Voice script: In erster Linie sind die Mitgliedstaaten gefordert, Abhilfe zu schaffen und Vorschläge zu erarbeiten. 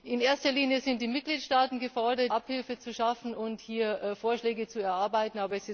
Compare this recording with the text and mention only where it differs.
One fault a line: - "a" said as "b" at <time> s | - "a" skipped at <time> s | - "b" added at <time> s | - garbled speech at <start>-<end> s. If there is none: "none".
none